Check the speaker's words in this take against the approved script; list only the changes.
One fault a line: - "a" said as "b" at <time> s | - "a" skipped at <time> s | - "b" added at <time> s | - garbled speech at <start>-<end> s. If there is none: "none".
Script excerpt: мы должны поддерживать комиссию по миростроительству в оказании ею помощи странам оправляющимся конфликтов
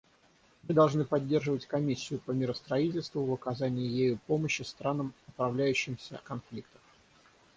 none